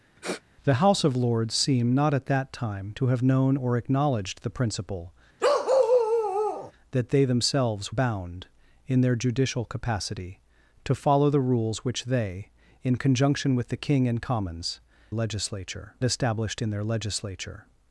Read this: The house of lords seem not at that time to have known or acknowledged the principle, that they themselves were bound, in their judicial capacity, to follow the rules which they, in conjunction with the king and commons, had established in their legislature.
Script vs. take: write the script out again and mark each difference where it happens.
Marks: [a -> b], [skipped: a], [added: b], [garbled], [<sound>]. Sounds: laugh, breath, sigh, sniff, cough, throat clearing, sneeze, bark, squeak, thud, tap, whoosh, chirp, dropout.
[sniff] The house of lords seem not at that time to have known or acknowledged the principle, [bark] that they themselves [skipped: were] bound, in their judicial capacity, to follow the rules which they, in conjunction with the king and commons, [had -> legislature] established in their legislature.